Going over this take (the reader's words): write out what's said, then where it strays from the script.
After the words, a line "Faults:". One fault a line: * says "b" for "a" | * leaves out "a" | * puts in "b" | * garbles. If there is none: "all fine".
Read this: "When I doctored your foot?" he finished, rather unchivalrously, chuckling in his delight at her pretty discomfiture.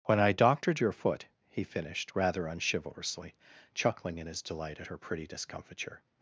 "When I doctored your foot?" he finished, rather unchivalrously, chuckling in his delight at her pretty discomfiture.
Faults:
all fine